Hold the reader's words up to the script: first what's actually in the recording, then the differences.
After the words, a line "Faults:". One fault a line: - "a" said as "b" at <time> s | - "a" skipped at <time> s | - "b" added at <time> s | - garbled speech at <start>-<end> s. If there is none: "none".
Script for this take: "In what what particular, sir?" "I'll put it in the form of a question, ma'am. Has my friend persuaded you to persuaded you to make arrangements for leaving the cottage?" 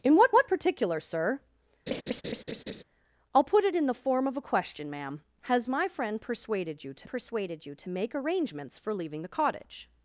"In what what particular, sir?" "I'll put it in the form of a question, ma'am. Has my friend persuaded you to persuaded you to make arrangements for leaving the cottage?"
Faults:
none